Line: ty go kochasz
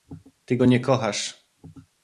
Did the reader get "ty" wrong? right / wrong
right